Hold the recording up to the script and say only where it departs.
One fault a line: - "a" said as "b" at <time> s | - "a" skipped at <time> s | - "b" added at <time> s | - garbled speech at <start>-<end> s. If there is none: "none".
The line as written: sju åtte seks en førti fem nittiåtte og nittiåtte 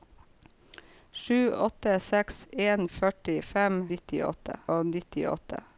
none